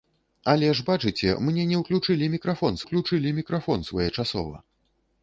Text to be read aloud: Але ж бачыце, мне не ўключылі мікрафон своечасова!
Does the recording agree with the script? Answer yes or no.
no